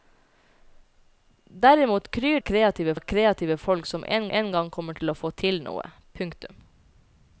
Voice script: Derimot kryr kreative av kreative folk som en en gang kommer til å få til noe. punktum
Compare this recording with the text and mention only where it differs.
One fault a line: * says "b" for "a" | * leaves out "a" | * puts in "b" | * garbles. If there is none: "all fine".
all fine